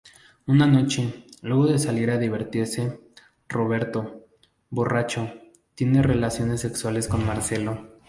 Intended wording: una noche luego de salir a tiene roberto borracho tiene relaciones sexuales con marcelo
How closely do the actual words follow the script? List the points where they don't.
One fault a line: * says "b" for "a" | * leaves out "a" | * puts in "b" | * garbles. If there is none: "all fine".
* says "divertirse" for "tiene"